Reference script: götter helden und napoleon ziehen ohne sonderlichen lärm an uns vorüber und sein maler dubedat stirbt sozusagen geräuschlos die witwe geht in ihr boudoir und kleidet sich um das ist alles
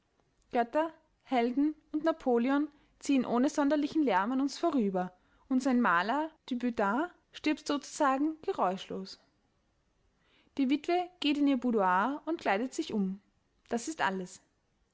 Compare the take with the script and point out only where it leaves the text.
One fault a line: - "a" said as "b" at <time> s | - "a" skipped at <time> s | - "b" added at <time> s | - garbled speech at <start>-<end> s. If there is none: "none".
none